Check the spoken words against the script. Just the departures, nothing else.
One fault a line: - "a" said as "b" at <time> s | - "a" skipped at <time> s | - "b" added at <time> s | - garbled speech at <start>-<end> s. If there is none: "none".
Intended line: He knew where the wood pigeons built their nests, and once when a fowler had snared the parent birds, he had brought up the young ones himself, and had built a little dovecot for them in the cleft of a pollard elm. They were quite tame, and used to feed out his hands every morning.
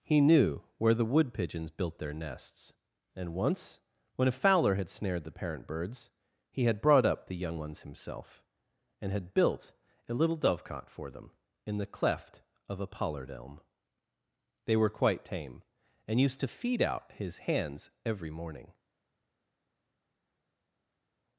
none